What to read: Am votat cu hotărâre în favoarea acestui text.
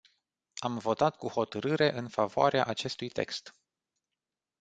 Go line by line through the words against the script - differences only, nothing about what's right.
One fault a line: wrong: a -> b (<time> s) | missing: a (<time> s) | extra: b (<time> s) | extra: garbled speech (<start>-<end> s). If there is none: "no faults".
no faults